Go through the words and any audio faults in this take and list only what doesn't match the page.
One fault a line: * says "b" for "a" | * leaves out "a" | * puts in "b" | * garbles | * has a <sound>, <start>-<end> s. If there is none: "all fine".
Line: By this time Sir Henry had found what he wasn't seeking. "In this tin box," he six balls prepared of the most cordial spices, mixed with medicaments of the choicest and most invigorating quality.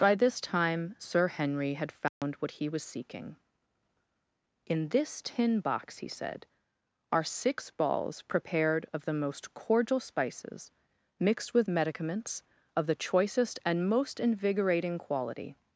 * has a dropout, 2.1-2.2 s
* says "was" for "wasn't"
* puts in "said are"